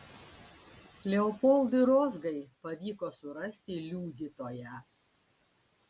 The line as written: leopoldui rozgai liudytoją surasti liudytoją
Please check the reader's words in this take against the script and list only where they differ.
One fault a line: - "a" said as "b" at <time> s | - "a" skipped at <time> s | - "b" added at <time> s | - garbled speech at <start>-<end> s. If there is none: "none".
- "liudytoją" said as "pavyko" at 2.6 s